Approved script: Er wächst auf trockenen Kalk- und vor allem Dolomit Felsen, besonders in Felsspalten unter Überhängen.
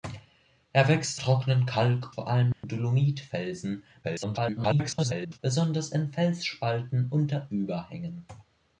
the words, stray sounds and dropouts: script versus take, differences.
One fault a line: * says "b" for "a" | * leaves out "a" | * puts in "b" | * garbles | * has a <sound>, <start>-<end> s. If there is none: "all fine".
* leaves out "auf"
* leaves out "und"
* has a dropout, 2.5-2.6 s
* garbles